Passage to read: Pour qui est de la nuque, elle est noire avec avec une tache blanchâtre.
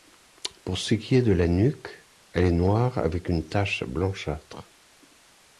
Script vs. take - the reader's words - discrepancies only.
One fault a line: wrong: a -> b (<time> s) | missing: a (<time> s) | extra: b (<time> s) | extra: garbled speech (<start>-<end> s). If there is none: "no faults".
extra: ce (0.8 s)
missing: avec (3.3 s)